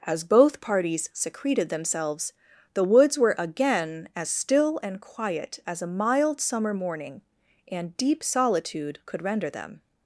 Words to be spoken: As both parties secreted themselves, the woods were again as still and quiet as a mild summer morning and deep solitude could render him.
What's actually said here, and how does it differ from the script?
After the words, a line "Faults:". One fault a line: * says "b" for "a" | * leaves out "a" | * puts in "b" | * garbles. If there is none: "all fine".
As both parties secreted themselves, the woods were again as still and quiet as a mild summer morning and deep solitude could render them.
Faults:
* says "them" for "him"